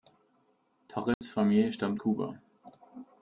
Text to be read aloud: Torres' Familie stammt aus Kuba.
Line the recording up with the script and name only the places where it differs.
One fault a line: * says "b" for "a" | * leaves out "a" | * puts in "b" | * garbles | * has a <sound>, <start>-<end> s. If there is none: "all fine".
* has a dropout, 1.1-1.2 s
* leaves out "aus"